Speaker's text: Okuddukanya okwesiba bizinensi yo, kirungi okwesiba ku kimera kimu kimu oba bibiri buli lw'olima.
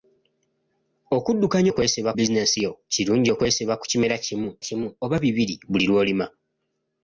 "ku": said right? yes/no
yes